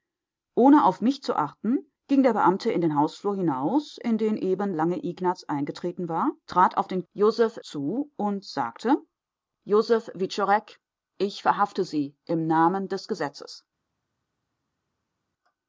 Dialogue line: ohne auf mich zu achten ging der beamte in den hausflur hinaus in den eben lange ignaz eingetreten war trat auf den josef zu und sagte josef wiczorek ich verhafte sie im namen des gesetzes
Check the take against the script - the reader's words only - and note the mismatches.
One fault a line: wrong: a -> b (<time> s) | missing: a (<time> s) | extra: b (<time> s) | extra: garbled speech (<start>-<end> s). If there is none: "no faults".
no faults